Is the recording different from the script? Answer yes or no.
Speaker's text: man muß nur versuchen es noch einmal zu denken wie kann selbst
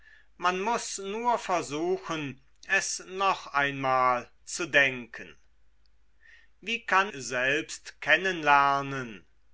no